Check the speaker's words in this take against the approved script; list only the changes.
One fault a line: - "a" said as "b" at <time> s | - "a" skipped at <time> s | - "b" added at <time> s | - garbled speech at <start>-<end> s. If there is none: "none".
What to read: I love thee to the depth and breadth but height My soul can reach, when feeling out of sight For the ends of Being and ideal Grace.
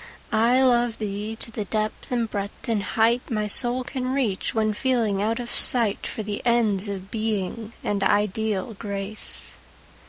- "but" said as "and" at 2.7 s